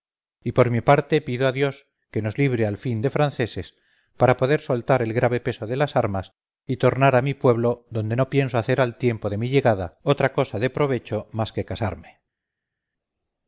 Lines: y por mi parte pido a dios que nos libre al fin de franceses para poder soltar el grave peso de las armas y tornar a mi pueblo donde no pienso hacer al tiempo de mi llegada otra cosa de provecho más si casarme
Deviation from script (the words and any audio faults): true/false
true